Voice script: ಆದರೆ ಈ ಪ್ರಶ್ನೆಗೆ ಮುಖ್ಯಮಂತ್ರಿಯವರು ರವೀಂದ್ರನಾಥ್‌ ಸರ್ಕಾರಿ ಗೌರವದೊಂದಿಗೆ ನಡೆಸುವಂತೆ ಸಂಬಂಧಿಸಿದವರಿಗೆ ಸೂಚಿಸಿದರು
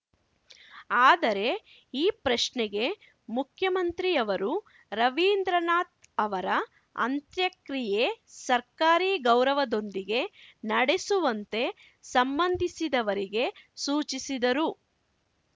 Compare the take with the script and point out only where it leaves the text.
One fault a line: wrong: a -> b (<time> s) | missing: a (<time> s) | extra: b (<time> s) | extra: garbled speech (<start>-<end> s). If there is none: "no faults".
extra: ಅವರ ಅಂತ್ಯಕ್ರಿಯೆ (6.2 s)